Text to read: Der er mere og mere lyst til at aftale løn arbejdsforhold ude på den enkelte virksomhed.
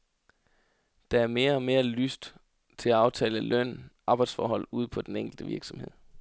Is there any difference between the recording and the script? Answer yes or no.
no